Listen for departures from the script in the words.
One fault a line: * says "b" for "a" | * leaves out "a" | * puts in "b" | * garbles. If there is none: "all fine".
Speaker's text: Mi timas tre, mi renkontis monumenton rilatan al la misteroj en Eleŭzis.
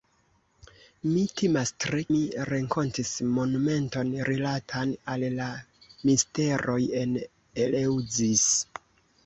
all fine